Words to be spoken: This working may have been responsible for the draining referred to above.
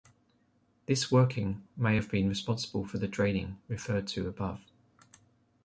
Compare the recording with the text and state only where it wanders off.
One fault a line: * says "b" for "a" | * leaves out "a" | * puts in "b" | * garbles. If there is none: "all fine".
all fine